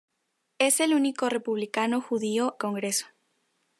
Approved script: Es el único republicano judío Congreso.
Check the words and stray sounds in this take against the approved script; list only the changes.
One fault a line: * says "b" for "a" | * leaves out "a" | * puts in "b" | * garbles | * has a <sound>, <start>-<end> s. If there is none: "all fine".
all fine